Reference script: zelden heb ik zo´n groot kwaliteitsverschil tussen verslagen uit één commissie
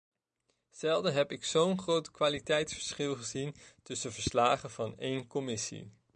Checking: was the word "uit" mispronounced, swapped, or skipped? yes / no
yes